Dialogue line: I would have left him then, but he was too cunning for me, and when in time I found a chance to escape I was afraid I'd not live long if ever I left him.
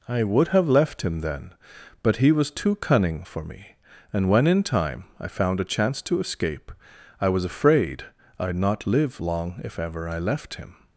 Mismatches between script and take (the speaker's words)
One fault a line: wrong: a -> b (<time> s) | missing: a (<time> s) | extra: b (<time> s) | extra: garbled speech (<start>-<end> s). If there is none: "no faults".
no faults